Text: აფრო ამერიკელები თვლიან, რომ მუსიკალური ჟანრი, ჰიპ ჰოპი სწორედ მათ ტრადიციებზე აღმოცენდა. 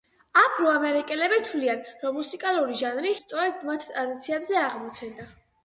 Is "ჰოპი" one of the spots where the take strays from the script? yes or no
yes